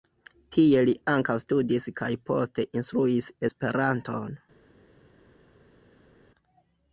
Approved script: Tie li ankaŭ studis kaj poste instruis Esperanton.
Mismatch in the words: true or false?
false